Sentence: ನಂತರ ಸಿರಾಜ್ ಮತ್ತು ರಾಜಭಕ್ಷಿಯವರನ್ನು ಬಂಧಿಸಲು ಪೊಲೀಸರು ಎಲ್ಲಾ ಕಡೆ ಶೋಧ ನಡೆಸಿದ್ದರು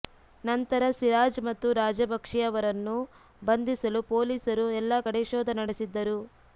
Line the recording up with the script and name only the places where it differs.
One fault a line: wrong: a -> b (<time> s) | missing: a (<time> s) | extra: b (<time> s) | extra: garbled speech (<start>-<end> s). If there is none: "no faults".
no faults